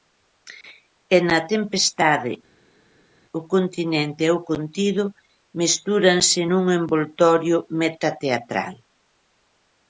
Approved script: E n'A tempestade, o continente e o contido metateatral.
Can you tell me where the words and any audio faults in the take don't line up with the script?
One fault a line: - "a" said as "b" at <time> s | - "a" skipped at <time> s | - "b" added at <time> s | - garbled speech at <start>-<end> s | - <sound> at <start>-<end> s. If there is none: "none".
- "mestúranse nun envoltorio" added at 5.6 s